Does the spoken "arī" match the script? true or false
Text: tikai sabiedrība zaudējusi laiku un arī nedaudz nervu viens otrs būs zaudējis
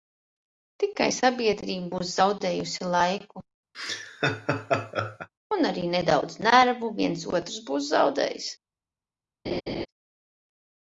true